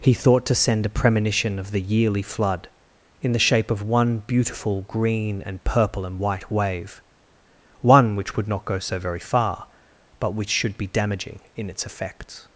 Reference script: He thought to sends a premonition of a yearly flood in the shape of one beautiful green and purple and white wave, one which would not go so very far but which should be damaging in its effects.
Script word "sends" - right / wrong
wrong